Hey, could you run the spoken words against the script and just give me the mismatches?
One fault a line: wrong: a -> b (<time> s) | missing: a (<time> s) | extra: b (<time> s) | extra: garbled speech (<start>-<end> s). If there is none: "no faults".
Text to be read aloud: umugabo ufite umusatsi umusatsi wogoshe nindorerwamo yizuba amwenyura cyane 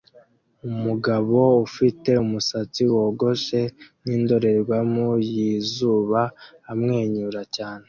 missing: umusatsi (2.8 s)